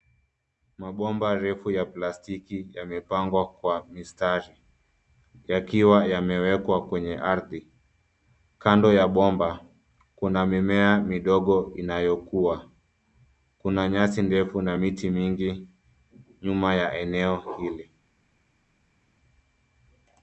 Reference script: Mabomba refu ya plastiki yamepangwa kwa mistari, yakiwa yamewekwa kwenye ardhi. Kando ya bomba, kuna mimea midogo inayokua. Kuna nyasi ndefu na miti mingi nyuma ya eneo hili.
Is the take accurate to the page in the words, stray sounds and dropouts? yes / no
yes